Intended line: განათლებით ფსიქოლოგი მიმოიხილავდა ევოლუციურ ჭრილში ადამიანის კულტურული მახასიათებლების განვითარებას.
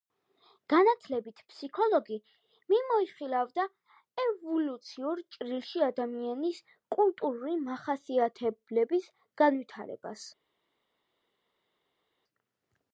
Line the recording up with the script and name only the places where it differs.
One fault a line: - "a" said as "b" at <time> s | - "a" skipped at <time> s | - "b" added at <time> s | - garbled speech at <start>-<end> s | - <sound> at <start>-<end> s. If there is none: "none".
none